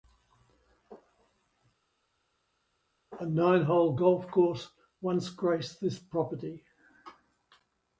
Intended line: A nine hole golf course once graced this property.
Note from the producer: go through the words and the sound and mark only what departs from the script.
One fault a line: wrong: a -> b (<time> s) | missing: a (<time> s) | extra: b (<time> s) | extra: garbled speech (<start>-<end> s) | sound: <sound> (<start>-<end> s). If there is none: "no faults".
no faults